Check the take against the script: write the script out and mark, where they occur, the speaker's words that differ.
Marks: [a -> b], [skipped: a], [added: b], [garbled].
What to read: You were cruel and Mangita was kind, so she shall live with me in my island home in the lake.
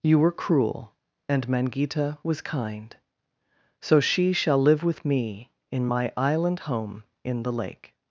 You were cruel and Mangita was kind, so she shall live with me in my island home in the lake.